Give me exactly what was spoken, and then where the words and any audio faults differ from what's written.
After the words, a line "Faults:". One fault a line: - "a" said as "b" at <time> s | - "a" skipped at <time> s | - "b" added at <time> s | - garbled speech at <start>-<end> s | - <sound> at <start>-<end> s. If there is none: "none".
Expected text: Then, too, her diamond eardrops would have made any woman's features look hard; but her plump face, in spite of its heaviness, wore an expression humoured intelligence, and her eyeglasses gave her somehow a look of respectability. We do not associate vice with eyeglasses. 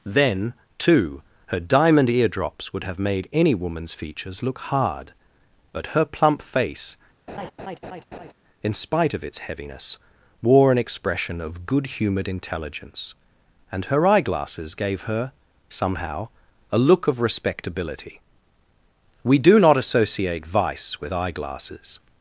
Then, too, her diamond eardrops would have made any woman's features look hard; but her plump face, in spite of its heaviness, wore an expression of good humoured intelligence, and her eyeglasses gave her somehow a look of respectability. We do not associate vice with eyeglasses.
Faults:
- laugh at 7.3-8.3 s
- "of good" added at 11.4 s